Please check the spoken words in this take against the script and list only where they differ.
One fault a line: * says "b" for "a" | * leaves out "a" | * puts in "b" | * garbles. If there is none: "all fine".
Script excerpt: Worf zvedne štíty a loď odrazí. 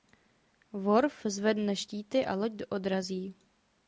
all fine